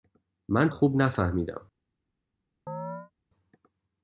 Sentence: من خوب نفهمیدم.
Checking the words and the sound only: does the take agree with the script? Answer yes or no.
no